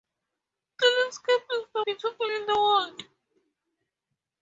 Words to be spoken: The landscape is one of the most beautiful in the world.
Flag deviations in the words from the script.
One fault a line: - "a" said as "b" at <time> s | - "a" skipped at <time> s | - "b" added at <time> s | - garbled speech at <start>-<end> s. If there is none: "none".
- "one" skipped at 1.6 s
- "most" skipped at 1.8 s